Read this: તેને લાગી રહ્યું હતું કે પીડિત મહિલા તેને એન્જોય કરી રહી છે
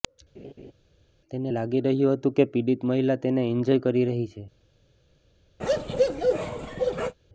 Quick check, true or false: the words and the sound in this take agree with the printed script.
false